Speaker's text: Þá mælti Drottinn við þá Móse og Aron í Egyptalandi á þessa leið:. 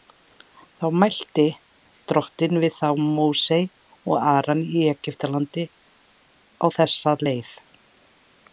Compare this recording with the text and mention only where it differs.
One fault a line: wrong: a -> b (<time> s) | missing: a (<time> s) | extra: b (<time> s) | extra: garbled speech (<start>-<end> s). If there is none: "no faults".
no faults